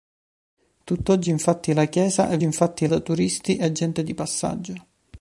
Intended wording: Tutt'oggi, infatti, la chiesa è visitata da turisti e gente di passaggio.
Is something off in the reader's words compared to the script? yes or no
yes